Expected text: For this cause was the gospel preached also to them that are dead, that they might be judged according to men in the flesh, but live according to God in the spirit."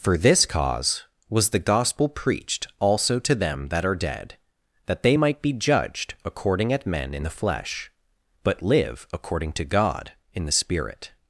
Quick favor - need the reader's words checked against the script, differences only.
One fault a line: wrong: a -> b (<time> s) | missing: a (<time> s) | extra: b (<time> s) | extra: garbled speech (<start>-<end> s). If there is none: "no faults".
wrong: to -> at (6.7 s)